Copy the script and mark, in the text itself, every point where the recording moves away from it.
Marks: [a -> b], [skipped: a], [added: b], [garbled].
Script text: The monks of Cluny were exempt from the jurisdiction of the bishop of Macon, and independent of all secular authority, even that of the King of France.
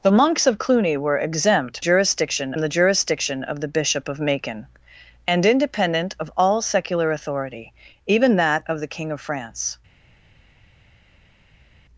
The monks of Cluny were exempt [from -> jurisdiction] the jurisdiction of the bishop of Macon, and independent of all secular authority, even that of the King of France.